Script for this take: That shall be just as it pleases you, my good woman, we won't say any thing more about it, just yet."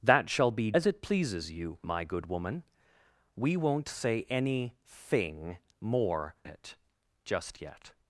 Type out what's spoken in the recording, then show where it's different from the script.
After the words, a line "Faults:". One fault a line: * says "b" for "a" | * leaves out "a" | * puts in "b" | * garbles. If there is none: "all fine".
That shall be as it pleases you, my good woman, we won't say any thing more it, just yet."
Faults:
* leaves out "just"
* leaves out "about"